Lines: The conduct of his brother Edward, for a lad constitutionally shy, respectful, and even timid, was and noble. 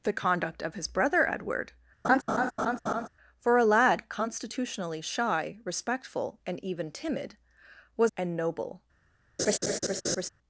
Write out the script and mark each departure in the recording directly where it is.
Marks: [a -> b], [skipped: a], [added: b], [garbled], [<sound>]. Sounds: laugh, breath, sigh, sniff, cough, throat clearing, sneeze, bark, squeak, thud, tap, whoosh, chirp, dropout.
The conduct of his brother Edward, [laugh] for a lad constitutionally shy, respectful, and even timid, was and noble. [laugh]